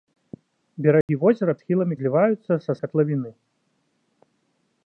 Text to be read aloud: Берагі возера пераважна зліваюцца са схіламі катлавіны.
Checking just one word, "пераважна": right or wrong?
wrong